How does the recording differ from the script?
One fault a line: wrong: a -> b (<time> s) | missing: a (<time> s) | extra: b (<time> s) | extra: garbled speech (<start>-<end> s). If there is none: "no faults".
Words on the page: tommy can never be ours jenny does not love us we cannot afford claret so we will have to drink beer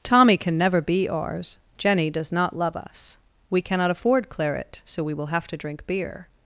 no faults